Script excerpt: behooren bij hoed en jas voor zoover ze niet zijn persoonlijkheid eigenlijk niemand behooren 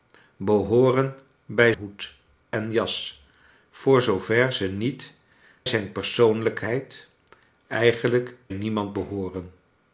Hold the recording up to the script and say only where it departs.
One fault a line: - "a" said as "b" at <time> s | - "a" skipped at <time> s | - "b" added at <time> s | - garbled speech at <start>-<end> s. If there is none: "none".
none